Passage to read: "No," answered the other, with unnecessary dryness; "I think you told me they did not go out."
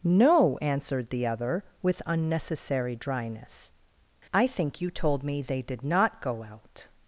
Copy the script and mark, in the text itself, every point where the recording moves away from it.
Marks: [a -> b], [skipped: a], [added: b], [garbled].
"No," answered the other, with unnecessary dryness; "I think you told me they did not go out."